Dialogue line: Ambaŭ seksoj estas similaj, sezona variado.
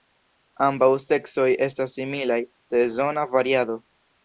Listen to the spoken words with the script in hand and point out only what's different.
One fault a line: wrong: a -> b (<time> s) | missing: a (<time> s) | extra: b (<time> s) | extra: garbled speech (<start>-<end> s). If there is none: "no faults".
no faults